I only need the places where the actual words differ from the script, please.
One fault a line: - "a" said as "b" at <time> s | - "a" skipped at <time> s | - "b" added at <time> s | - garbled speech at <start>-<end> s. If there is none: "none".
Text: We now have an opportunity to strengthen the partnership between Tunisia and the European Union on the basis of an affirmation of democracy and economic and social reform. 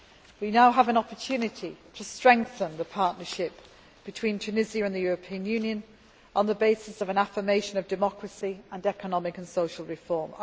none